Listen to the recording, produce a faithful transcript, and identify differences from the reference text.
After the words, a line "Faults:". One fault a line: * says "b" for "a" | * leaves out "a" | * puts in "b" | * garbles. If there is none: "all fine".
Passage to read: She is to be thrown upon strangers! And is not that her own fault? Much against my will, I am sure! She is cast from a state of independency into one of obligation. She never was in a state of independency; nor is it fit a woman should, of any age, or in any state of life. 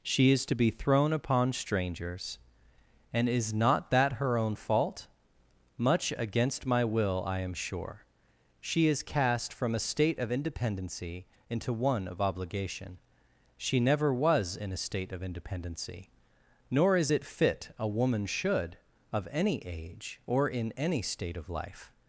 She is to be thrown upon strangers! And is not that her own fault? Much against my will, I am sure! She is cast from a state of independency into one of obligation. She never was in a state of independency; nor is it fit a woman should, of any age, or in any state of life.
Faults:
all fine